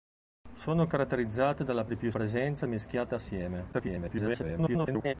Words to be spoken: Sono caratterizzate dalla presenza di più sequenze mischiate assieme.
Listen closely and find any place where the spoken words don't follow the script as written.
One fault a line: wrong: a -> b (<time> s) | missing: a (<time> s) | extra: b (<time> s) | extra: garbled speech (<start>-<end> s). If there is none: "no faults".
missing: presenza (1.9 s)
wrong: sequenze -> presenza (2.1 s)
extra: garbled speech (3.7-5.1 s)